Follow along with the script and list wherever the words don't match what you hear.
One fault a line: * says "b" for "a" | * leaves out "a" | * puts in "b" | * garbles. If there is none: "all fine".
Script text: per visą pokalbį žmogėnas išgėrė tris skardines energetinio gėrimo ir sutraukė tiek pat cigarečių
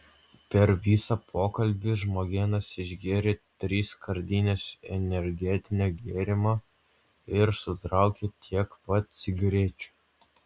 all fine